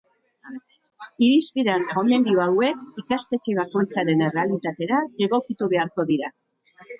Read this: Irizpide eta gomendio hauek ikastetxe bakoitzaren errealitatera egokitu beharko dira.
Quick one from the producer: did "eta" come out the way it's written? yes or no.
yes